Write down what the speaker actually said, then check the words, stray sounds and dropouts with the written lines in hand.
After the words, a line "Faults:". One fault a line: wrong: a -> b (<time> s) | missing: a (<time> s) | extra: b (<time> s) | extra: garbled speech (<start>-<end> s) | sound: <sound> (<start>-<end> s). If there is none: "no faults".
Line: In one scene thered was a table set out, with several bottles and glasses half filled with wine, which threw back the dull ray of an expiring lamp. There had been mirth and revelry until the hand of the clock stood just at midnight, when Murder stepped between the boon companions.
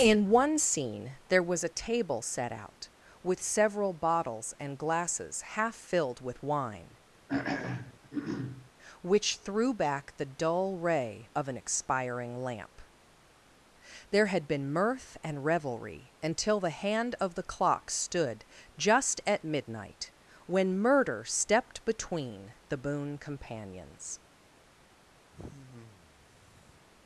In one scene there was a table set out, with several bottles and glasses half filled with wine, which threw back the dull ray of an expiring lamp. There had been mirth and revelry until the hand of the clock stood just at midnight, when Murder stepped between the boon companions.
Faults:
wrong: thered -> there (1.3 s)
sound: throat clearing (7.3-8.7 s)
sound: sigh (25.3-26.9 s)